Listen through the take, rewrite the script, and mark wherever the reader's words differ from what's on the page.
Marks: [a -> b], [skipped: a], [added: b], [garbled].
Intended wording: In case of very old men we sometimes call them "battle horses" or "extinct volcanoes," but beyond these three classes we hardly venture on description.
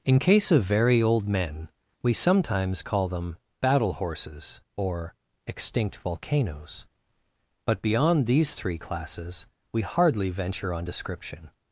In case of very old men we sometimes call them "battle horses" or "extinct volcanoes," but beyond these three classes we hardly venture on description.